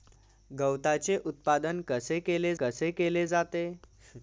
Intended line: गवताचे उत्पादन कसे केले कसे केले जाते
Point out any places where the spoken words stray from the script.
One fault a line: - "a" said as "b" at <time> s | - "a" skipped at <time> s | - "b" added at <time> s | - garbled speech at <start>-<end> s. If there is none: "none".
none